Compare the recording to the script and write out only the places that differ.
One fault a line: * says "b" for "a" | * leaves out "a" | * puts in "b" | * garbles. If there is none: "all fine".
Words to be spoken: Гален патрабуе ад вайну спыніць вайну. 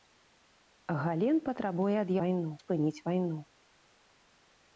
all fine